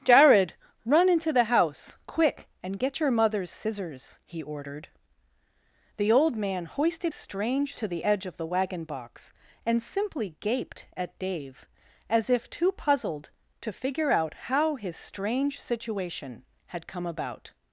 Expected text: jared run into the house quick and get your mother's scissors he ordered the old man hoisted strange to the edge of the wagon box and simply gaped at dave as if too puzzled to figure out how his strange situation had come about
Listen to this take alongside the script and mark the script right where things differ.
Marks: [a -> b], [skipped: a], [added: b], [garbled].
jared run into the house quick and get your mother's scissors he ordered the old man hoisted strange to the edge of the wagon box and simply gaped at dave as if too puzzled to figure out how his strange situation had come about